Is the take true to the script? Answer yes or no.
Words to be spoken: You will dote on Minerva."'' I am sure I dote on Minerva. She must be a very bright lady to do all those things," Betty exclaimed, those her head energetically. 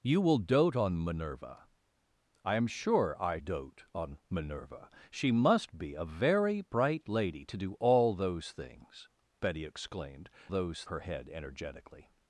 yes